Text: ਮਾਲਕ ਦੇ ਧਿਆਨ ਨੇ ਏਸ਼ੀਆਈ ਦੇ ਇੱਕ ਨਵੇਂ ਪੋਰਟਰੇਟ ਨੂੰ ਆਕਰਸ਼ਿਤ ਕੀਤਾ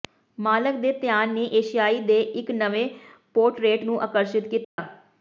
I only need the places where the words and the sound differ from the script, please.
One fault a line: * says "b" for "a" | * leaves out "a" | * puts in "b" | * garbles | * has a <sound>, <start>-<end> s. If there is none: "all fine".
* has a dropout, 4.6-4.8 s